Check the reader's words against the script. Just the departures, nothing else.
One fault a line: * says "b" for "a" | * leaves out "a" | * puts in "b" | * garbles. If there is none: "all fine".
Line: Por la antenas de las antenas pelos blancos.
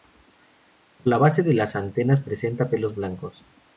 * says "base" for "antenas"
* puts in "presenta"